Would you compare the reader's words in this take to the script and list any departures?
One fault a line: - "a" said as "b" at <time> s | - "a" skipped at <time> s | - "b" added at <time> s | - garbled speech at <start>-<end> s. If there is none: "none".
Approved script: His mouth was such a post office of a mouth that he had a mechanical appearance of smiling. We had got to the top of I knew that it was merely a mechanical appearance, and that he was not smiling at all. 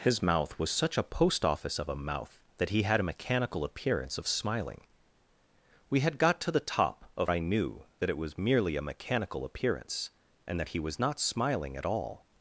none